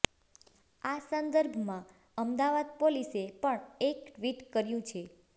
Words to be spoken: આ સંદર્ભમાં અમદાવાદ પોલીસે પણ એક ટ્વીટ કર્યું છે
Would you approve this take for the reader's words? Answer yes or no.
yes